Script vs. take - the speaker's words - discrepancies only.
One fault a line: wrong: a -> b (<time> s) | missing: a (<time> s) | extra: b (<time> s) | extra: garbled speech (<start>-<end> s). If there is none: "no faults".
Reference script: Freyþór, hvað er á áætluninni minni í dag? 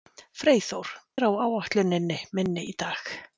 missing: hvað (0.9 s)